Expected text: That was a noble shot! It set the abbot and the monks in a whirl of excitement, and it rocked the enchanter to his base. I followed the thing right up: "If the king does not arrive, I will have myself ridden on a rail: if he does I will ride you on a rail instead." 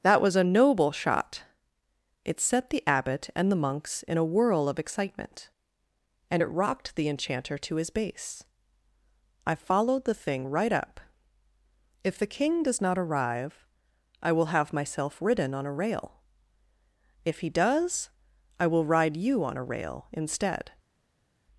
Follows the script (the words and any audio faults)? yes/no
yes